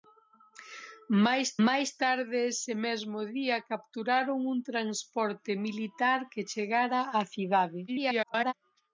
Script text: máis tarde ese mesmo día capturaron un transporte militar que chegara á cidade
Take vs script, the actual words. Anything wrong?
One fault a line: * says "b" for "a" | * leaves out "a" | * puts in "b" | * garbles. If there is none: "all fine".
* puts in "máis"
* garbles